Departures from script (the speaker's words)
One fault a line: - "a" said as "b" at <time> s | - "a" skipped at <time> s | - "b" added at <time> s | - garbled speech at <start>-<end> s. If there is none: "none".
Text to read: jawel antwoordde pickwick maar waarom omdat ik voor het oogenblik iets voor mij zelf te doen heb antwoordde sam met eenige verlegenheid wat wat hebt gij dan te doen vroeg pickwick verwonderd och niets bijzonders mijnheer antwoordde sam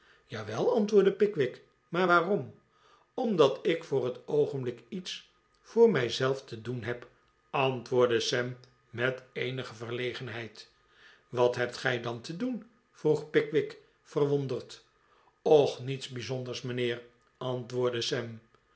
- "wat" skipped at 11.5 s